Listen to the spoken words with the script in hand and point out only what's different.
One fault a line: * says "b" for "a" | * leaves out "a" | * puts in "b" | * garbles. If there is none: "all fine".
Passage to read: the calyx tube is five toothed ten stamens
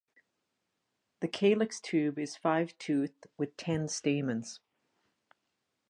* puts in "with"